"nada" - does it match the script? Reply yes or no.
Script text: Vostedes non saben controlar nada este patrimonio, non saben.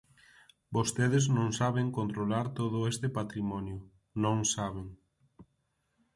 no